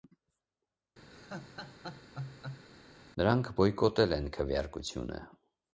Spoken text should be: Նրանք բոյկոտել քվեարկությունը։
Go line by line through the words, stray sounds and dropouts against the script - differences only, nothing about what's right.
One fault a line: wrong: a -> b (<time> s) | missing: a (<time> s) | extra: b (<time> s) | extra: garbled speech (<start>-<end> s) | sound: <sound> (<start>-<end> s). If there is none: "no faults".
sound: laugh (1.1-2.7 s)
extra: են (4.2 s)